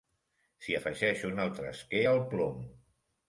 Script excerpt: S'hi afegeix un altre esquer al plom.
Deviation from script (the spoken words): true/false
false